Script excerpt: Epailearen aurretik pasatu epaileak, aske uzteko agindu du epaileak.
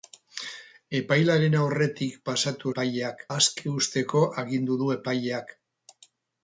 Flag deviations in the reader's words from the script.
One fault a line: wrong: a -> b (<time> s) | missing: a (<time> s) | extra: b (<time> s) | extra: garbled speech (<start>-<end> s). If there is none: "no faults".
no faults